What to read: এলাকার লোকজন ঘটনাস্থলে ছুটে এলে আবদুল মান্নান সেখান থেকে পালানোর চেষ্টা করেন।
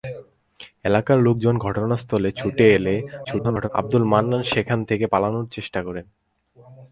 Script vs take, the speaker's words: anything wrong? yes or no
yes